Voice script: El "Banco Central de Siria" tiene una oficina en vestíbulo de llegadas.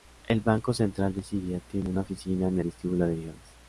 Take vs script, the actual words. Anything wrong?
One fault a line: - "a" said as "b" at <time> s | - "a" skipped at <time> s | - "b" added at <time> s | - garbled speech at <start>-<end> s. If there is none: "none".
none